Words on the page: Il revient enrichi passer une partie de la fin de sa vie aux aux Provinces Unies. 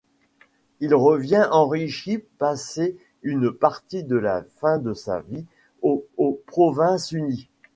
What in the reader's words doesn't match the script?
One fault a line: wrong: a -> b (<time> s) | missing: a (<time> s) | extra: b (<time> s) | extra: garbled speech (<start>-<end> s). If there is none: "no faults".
no faults